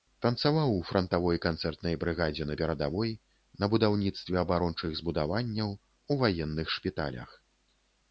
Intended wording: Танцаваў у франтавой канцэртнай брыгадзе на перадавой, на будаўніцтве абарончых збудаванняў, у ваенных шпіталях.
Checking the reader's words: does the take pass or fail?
pass